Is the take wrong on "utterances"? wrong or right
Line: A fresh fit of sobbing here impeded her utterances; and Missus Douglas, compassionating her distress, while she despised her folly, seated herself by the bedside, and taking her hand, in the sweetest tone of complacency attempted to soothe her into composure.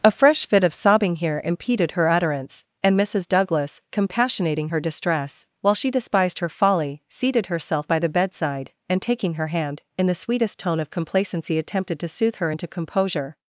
wrong